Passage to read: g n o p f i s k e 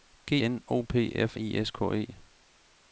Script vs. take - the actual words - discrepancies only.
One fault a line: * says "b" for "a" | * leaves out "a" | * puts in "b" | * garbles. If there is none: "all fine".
all fine